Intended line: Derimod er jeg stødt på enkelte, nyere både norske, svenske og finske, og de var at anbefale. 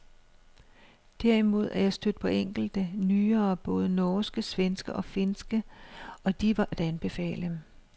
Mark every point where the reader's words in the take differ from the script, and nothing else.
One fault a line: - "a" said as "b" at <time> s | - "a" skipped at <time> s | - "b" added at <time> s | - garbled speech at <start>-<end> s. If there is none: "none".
none